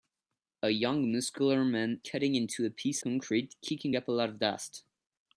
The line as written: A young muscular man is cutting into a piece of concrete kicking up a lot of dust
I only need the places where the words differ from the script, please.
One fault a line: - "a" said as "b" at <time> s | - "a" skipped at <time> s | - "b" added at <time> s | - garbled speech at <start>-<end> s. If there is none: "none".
- "is" skipped at 2.0 s
- "of" skipped at 3.0 s